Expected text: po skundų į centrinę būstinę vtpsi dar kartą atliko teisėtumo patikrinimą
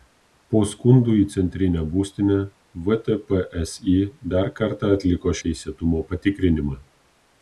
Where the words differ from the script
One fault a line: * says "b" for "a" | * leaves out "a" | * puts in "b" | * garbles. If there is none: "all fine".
all fine